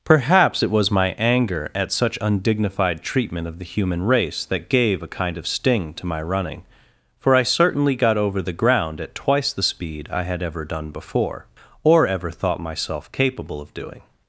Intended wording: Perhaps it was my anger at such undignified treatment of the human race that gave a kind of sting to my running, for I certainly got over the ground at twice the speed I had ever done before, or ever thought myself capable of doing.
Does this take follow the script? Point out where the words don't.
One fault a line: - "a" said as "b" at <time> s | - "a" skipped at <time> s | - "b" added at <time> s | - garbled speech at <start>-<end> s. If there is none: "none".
none